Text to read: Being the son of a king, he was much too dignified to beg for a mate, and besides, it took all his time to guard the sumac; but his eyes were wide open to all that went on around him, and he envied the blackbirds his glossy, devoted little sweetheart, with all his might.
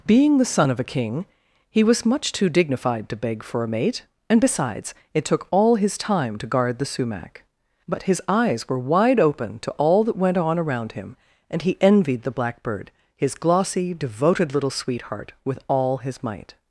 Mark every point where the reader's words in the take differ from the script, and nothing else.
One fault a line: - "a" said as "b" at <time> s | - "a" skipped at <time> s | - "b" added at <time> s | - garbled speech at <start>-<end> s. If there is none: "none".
- "blackbirds" said as "blackbird" at 12.3 s